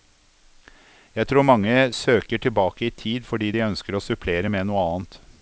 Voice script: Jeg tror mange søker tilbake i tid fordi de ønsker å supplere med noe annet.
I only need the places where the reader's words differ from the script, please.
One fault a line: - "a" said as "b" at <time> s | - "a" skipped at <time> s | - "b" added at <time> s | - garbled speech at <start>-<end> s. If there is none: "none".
none